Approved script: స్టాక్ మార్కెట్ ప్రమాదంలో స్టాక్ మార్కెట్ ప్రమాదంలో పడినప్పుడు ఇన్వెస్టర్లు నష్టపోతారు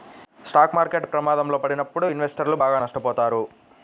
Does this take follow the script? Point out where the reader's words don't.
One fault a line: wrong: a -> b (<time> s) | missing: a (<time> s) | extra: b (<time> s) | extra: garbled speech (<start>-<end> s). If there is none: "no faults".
missing: స్టాక్ మార్కెట్ ప్రమాదంలో (1.6 s)
extra: బాగా (2.5 s)